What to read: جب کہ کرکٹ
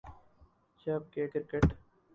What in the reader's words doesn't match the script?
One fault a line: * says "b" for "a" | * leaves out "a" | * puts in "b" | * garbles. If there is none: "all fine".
all fine